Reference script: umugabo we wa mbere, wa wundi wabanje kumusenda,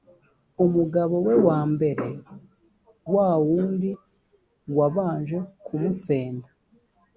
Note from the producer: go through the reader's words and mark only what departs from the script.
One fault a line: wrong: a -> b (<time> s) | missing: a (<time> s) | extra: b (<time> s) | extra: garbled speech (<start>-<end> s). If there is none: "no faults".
no faults